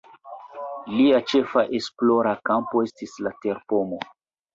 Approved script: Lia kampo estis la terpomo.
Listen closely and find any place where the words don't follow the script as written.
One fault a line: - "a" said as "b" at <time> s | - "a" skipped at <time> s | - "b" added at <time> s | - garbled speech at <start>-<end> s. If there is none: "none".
- "ĉefa esplora" added at 1.3 s